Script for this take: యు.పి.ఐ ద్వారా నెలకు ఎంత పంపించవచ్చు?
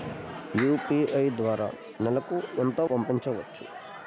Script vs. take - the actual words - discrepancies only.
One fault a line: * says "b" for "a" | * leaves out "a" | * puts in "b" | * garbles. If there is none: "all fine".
all fine